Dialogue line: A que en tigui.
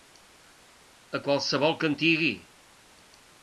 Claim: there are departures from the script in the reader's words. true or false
true